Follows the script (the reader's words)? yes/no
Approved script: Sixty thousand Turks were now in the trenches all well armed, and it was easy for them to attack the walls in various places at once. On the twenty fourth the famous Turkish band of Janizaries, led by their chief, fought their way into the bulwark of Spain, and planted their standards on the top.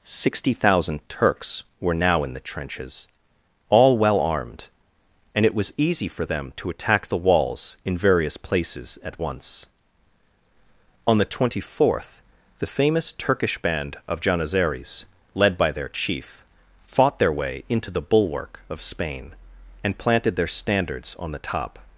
yes